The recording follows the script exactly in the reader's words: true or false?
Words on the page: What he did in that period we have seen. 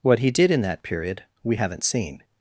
false